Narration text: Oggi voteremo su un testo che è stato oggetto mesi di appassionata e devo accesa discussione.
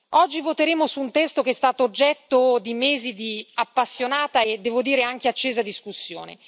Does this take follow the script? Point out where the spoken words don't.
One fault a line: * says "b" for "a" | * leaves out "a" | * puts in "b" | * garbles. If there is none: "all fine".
* puts in "di"
* puts in "dire anche"